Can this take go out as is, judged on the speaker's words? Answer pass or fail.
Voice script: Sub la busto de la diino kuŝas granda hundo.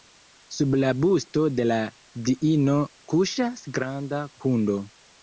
pass